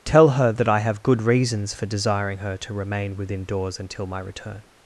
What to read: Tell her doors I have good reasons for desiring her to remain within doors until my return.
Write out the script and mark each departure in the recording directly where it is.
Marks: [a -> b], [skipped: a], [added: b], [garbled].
Tell her [doors -> that] I have good reasons for desiring her to remain within doors until my return.